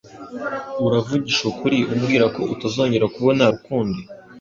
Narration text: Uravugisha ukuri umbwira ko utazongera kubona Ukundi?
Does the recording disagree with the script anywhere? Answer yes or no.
no